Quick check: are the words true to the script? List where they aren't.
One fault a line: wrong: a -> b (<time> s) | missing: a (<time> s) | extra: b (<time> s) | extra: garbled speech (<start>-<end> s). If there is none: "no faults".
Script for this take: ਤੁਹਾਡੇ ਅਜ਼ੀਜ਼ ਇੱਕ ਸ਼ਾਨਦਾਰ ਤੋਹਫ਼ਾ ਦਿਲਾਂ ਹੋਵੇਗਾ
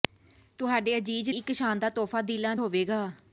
no faults